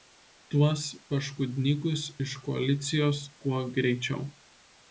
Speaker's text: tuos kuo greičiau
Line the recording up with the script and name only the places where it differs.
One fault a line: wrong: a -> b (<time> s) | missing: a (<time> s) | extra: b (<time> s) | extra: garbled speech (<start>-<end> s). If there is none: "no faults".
extra: paškudnykus iš koalicijos (1.1 s)